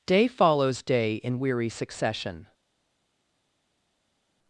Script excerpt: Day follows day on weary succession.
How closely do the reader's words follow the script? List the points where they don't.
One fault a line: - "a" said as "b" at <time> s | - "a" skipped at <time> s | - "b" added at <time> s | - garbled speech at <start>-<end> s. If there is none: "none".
- "on" said as "in" at 1.2 s